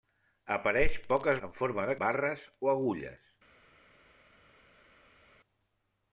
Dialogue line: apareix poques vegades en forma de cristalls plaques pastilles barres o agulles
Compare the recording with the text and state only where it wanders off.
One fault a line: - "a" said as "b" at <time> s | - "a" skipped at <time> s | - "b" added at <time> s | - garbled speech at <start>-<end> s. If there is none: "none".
- "vegades" skipped at 1.4 s
- "cristalls plaques pastilles" skipped at 2.0 s